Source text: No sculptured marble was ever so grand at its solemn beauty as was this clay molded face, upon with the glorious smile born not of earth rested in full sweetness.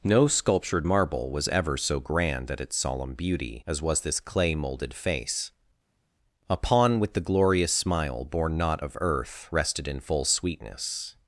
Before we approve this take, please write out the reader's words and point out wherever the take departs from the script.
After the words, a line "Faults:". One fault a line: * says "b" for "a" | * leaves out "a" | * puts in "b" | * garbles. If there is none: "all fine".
No sculptured marble was ever so grand at its solemn beauty as was this clay molded face, upon with the glorious smile born not of earth rested in full sweetness.
Faults:
all fine